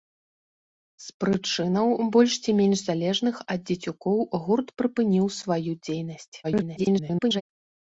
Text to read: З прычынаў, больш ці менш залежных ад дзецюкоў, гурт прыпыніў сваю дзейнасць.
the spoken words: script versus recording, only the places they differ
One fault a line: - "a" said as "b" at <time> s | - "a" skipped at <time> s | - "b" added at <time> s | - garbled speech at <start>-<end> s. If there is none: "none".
- garbled speech at 6.4-7.4 s